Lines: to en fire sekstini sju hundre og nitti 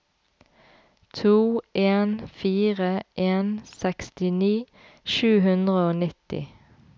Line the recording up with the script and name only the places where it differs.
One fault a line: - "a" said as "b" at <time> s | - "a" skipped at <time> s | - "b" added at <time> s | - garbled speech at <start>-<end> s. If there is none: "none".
- "en" added at 3.3 s